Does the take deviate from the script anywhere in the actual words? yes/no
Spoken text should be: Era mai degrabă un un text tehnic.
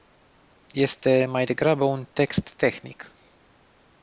yes